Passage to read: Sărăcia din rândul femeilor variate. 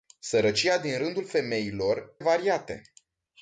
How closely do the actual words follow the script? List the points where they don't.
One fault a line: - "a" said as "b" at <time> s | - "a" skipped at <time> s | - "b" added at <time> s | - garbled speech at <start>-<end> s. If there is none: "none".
none